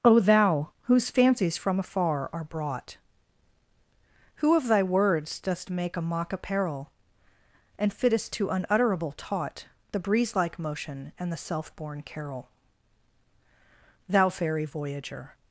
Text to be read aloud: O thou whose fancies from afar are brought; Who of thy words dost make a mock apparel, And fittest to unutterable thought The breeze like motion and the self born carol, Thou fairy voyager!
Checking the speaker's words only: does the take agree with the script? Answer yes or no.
no